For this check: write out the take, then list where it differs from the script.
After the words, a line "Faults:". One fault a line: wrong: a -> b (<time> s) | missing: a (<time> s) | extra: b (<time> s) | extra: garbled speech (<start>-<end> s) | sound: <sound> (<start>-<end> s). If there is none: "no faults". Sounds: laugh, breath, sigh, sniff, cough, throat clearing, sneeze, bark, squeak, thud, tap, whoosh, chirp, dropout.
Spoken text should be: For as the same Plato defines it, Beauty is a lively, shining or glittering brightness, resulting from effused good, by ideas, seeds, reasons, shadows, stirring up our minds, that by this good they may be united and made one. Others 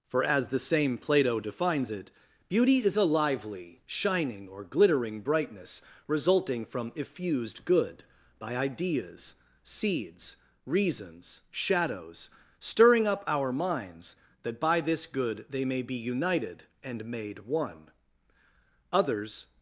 For as the same Plato defines it, Beauty is a lively, shining or glittering brightness, resulting from effused good, by ideas, seeds, reasons, shadows, stirring up our minds, that by this good they may be united and made one. Others
Faults:
no faults